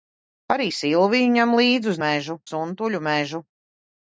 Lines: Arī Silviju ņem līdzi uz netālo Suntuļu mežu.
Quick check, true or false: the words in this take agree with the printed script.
false